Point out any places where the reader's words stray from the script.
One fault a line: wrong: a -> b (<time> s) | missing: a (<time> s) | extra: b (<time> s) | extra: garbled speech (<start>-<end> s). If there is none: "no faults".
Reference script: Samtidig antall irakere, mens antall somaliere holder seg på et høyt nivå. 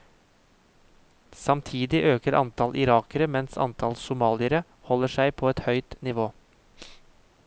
extra: øker (2.1 s)